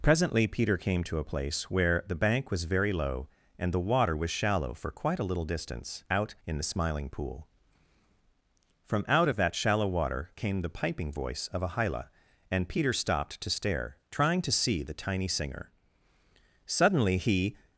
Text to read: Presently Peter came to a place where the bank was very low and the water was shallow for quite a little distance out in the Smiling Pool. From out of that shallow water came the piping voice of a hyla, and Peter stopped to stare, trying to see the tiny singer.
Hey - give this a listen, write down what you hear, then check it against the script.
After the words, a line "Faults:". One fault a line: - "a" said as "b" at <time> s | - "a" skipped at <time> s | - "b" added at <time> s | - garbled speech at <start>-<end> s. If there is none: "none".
Presently Peter came to a place where the bank was very low and the water was shallow for quite a little distance out in the Smiling Pool. From out of that shallow water came the piping voice of a hyla, and Peter stopped to stare, trying to see the tiny singer. Suddenly he
Faults:
- "Suddenly he" added at 16.6 s